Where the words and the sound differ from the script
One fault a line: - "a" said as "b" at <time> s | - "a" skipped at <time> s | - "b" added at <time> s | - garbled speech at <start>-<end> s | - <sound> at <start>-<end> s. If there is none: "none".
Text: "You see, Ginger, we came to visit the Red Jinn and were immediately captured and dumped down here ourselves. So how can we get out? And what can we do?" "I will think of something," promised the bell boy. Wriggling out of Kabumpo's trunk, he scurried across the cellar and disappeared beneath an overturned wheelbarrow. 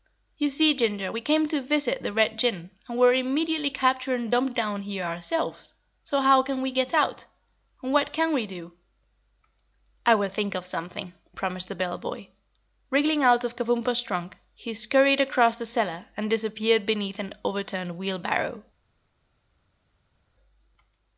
none